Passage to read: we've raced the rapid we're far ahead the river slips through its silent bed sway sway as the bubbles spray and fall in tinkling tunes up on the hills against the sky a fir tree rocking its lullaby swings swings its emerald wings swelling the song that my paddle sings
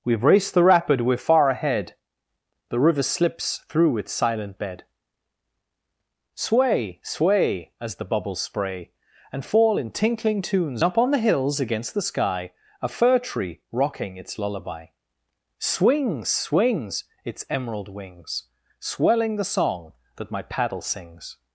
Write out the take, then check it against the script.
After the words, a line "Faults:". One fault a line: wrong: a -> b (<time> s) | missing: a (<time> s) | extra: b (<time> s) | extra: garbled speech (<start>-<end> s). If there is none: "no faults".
we've raced the rapid we're far ahead the river slips through its silent bed sway sway as the bubbles spray and fall in tinkling tunes up on the hills against the sky a fir tree rocking its lullaby swings swings its emerald wings swelling the song that my paddle sings
Faults:
no faults